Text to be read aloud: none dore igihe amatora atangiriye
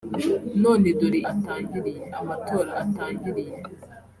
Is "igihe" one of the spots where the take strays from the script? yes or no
yes